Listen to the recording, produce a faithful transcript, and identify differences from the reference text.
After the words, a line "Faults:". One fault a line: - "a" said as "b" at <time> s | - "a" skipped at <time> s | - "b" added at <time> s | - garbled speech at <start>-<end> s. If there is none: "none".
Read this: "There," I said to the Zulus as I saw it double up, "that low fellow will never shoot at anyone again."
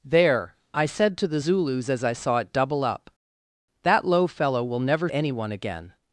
"There," I said to the Zulus as I saw it double up, "that low fellow will never anyone again."
Faults:
- "shoot at" skipped at 5.1 s